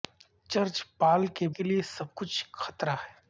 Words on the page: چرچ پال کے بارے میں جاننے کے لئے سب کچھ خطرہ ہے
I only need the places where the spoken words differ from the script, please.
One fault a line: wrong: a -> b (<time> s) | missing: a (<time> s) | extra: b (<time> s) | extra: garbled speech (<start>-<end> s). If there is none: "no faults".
missing: بارے میں جاننے (1.5 s)